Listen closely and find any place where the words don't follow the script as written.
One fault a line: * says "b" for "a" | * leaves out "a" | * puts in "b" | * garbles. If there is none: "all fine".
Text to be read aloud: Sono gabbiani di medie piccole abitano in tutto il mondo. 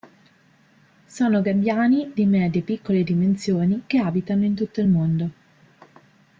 * puts in "dimensioni che"